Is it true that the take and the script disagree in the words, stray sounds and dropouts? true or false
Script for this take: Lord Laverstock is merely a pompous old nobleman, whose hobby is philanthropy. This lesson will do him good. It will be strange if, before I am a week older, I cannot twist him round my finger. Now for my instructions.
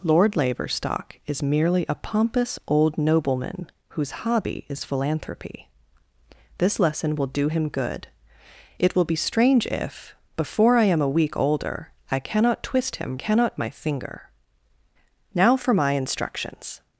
true